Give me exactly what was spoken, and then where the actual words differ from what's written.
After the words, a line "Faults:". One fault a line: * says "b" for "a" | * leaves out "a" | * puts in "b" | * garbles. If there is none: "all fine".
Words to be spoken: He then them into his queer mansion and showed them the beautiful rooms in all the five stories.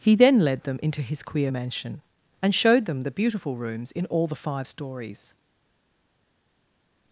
He then led them into his queer mansion and showed them the beautiful rooms in all the five stories.
Faults:
* puts in "led"